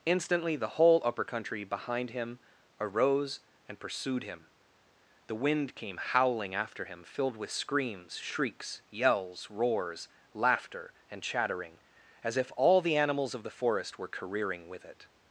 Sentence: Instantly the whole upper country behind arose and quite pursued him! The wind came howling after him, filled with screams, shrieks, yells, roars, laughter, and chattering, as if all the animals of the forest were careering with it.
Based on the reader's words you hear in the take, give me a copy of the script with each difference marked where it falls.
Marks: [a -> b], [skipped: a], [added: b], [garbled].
Instantly the whole upper country behind [added: him] arose and [skipped: quite] pursued him! The wind came howling after him, filled with screams, shrieks, yells, roars, laughter, and chattering, as if all the animals of the forest were careering with it.